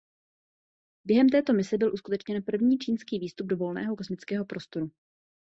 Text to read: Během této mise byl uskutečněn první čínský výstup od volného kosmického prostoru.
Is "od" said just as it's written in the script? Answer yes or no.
no